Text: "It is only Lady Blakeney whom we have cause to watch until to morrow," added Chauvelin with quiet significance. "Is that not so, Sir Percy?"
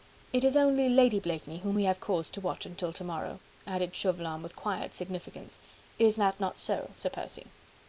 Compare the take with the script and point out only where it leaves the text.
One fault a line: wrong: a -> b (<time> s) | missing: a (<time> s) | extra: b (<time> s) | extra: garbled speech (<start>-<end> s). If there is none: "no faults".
no faults